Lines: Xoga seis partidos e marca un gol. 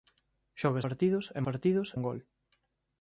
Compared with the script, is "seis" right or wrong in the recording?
wrong